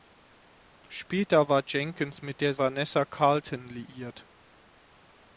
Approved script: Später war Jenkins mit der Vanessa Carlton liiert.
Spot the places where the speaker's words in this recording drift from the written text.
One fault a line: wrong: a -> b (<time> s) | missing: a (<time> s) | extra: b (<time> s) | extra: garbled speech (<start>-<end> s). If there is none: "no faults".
no faults